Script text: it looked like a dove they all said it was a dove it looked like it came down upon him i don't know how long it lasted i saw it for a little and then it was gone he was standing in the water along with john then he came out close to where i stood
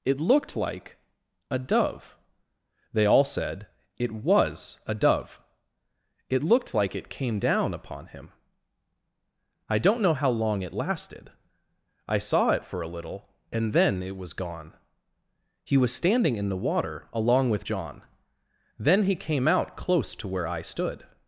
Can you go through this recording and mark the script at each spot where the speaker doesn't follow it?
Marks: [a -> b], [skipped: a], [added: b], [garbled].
it looked like a dove they all said it was a dove it looked like it came down upon him i don't know how long it lasted i saw it for a little and then it was gone he was standing in the water along with john then he came out close to where i stood